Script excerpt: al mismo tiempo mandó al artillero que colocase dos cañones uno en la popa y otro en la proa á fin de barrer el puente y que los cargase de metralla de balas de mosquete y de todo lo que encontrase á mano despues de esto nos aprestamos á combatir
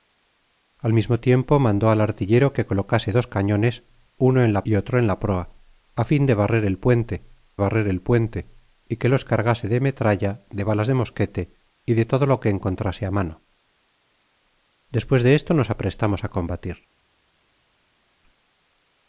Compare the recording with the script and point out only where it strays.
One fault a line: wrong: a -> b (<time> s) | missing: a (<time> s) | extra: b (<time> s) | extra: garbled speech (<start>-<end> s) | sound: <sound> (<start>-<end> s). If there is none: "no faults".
missing: popa (4.7 s)
extra: barrer el puente (7.6 s)